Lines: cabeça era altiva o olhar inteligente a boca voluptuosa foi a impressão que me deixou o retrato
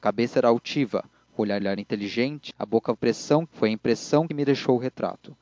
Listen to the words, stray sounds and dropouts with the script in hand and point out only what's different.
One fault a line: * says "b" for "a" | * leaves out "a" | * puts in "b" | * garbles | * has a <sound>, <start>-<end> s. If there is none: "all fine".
* puts in "olhar"
* says "impressão" for "voluptuosa"
* leaves out "que"